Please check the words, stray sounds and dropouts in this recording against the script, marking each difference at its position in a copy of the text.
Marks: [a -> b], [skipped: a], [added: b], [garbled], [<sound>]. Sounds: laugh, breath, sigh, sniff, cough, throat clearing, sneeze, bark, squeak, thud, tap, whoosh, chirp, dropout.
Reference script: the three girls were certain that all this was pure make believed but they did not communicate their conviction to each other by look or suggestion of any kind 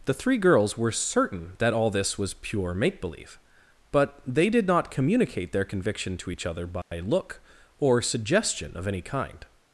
the three girls were certain that all this was pure make [believed -> believe] but they did not communicate their conviction to each other by [dropout] look or suggestion of any kind